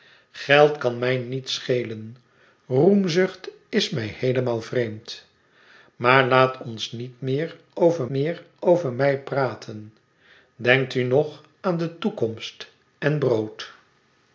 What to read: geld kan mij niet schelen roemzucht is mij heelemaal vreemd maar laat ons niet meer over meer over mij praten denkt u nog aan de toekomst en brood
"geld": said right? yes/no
yes